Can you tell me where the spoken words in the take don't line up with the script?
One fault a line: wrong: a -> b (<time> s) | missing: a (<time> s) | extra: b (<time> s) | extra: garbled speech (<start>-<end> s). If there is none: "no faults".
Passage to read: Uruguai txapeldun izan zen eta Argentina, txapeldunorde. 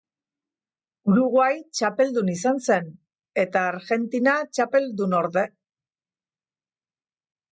no faults